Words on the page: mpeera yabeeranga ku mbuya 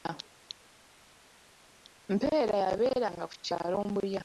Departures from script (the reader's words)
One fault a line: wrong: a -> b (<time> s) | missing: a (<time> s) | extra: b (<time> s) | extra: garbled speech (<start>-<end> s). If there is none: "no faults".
extra: kyalo (3.5 s)